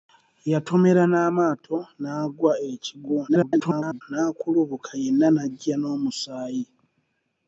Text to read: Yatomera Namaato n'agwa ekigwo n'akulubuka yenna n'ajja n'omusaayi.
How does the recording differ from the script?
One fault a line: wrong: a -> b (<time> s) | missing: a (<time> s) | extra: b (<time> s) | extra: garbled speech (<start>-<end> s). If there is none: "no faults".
extra: garbled speech (3.3-4.0 s)